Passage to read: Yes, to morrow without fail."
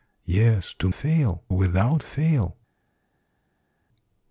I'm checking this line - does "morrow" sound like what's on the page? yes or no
no